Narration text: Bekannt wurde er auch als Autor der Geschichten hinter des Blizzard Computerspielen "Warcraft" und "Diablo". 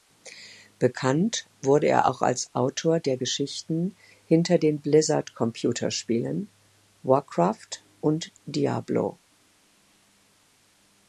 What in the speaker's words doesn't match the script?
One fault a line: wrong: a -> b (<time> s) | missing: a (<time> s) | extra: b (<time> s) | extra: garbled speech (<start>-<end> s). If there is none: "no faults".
wrong: des -> den (4.6 s)